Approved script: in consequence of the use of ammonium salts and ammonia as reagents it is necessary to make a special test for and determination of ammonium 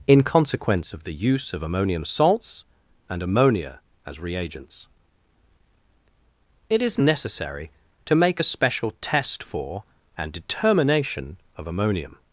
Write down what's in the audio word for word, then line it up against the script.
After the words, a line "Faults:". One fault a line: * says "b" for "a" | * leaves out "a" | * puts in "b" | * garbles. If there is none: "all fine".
in consequence of the use of ammonium salts and ammonia as reagents it is necessary to make a special test for and determination of ammonium
Faults:
all fine